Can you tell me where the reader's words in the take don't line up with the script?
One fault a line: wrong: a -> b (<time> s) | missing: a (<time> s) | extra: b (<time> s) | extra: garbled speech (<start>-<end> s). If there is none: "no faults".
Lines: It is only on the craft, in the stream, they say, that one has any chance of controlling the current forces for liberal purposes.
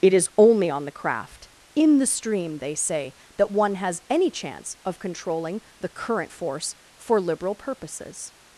wrong: forces -> force (6.3 s)